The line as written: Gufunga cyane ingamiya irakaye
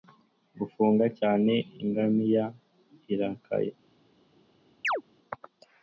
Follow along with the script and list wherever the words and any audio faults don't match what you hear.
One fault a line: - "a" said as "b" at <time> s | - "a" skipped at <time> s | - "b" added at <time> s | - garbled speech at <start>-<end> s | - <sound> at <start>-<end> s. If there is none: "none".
- chirp at 4.8-5.0 s